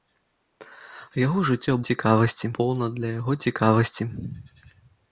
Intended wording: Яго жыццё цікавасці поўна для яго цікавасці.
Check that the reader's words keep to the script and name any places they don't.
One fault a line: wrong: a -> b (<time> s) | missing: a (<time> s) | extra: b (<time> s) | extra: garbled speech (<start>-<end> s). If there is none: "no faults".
no faults